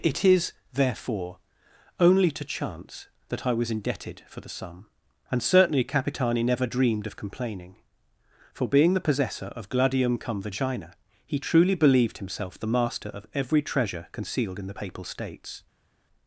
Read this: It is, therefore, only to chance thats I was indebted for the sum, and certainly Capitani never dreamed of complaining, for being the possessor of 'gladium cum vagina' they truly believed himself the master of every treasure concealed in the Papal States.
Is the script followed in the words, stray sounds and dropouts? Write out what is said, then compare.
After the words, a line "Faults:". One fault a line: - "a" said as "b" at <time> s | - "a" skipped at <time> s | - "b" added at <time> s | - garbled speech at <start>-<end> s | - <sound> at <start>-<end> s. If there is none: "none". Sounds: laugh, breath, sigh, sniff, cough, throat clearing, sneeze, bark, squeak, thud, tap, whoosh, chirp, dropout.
It is, therefore, only to chance that I was indebted for the sum, and certainly Capitani never dreamed of complaining, for being the possessor of 'gladium cum vagina' he truly believed himself the master of every treasure concealed in the Papal States.
Faults:
- "thats" said as "that" at 3.3 s
- "they" said as "he" at 11.3 s